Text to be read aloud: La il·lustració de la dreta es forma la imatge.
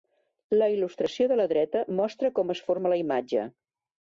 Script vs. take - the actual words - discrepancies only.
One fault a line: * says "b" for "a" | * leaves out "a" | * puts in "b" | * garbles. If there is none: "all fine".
* puts in "mostra com"